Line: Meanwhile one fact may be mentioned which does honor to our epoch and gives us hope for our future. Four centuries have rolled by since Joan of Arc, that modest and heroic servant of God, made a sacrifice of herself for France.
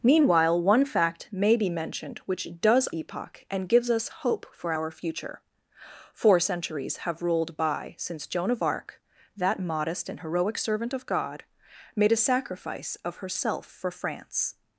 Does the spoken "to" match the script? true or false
false